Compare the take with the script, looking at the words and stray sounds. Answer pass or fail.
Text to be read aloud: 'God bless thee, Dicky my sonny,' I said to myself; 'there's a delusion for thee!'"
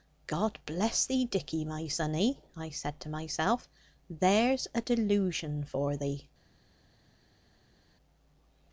pass